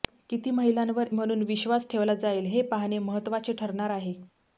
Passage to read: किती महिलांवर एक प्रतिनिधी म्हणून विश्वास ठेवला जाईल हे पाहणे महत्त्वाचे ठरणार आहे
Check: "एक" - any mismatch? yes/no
yes